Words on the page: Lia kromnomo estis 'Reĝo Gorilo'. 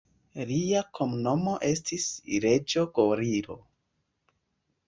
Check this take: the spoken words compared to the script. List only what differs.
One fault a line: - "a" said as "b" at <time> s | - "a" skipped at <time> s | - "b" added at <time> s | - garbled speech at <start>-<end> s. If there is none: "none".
none